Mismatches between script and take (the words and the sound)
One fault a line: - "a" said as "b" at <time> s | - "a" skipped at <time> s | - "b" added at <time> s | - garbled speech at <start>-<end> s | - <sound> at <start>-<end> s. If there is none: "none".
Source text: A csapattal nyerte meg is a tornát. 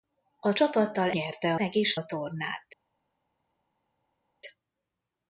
none